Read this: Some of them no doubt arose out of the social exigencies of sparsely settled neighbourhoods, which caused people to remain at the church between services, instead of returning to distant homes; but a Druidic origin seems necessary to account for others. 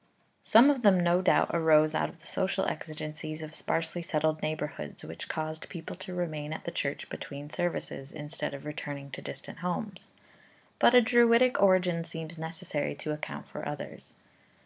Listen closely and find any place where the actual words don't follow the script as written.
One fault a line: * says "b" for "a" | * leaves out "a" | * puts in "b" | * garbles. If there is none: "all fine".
all fine